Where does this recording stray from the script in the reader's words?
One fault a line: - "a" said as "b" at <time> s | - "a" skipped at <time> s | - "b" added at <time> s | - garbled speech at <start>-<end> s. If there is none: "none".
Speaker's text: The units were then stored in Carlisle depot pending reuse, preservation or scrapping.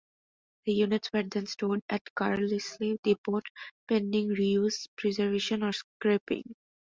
- "in" said as "at" at 1.9 s